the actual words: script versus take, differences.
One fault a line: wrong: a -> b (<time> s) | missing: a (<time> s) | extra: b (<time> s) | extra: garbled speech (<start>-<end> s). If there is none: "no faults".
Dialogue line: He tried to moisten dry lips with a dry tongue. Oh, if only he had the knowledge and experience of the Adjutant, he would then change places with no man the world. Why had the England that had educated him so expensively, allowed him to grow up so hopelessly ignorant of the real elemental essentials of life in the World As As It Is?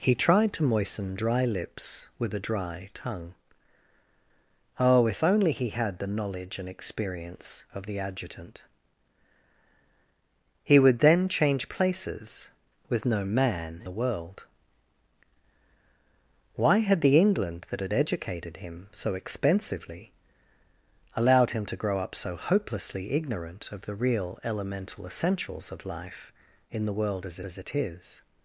no faults